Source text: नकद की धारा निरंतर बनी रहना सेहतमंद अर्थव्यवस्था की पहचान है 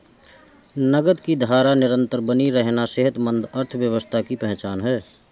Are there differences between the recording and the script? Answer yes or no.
no